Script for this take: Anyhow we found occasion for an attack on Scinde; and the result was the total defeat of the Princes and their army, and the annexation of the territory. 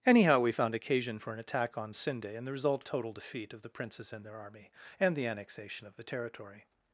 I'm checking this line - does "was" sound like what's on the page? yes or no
no